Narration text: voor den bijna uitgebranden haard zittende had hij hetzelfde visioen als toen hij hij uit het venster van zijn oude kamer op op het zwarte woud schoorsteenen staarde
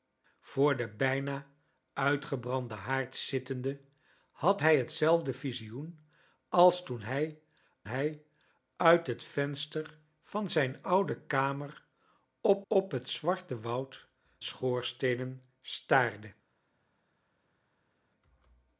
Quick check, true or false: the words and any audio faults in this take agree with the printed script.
true